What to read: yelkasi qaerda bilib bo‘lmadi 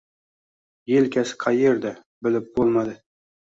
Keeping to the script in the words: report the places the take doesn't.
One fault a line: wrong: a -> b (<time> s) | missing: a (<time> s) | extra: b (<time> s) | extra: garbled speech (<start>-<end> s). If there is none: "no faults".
no faults